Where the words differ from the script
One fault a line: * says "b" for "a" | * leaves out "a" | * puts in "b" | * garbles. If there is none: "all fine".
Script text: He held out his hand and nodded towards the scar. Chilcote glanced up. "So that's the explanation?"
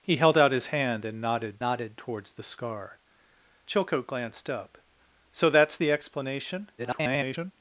* puts in "nodded"
* garbles